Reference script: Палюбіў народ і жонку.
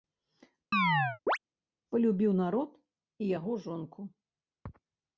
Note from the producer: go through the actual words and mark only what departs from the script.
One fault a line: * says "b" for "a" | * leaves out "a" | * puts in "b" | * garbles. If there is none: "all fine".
* puts in "яго"